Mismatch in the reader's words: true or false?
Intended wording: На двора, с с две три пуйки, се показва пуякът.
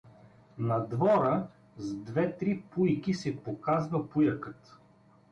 true